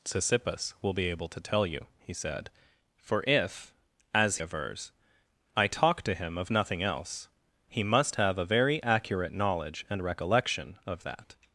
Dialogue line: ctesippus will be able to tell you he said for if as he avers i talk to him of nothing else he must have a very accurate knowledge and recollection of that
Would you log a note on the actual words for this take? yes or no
yes